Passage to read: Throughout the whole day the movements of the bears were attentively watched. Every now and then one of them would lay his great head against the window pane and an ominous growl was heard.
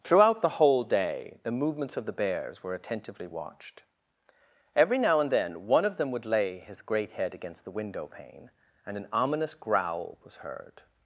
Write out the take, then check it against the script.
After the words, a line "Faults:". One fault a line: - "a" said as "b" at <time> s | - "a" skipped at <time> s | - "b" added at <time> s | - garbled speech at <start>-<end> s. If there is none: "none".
Throughout the whole day the movements of the bears were attentively watched. Every now and then one of them would lay his great head against the window pane and an ominous growl was heard.
Faults:
none